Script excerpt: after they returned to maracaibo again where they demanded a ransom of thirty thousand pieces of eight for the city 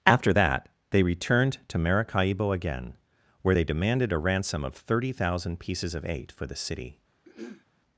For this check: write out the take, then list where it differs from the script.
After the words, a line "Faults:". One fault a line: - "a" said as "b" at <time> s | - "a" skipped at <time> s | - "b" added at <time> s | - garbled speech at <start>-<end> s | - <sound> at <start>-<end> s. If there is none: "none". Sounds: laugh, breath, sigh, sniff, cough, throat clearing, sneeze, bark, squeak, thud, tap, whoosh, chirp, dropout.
after that they returned to maracaibo again where they demanded a ransom of thirty thousand pieces of eight for the city
Faults:
- "that" added at 0.3 s
- throat clearing at 7.2-7.6 s